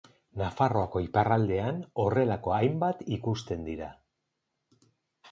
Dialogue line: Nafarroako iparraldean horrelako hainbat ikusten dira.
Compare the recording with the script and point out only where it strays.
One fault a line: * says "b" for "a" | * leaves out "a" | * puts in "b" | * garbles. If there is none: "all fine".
all fine